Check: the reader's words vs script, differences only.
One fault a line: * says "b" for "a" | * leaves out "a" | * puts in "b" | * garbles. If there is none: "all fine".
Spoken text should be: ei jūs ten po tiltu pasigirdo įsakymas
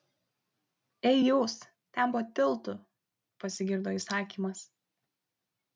all fine